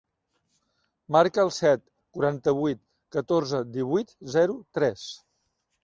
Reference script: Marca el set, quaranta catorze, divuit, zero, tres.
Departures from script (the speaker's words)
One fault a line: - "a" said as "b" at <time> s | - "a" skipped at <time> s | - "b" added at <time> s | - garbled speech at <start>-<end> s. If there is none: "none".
- "vuit" added at 2.6 s